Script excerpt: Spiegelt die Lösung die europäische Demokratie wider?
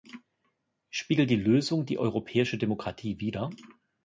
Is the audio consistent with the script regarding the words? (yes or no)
yes